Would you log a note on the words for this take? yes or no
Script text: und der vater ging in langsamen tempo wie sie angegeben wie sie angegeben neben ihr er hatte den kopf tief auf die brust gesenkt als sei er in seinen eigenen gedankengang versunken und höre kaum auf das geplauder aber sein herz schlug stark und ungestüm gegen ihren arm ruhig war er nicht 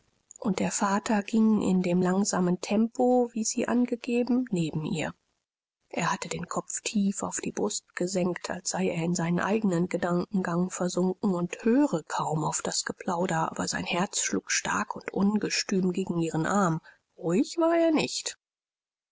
yes